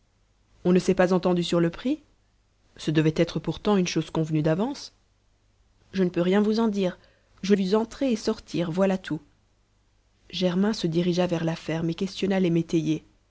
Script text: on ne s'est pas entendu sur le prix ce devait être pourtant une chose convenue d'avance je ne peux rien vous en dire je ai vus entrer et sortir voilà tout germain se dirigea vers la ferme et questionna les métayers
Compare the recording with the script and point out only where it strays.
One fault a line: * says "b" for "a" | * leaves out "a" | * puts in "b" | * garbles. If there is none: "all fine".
all fine